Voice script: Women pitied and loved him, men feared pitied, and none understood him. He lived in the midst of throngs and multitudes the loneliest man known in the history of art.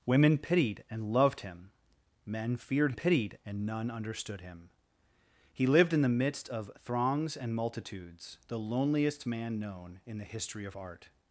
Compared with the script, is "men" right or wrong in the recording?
right